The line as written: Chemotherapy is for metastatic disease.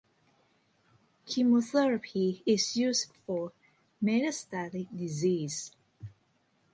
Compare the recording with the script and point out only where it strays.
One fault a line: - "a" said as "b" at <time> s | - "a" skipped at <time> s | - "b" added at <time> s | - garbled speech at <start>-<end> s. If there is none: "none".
- "used" added at 2.8 s